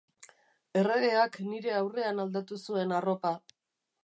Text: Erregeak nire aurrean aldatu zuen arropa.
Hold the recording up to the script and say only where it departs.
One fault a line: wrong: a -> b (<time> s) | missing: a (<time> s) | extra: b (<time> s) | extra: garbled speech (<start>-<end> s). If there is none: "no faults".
no faults